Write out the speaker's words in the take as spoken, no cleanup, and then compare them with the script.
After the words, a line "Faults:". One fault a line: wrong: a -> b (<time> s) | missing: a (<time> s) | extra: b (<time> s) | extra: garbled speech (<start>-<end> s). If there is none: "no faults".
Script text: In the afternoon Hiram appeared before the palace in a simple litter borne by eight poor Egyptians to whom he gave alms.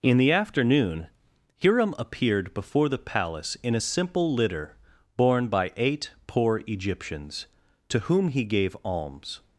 In the afternoon Hiram appeared before the palace in a simple litter borne by eight poor Egyptians to whom he gave alms.
Faults:
no faults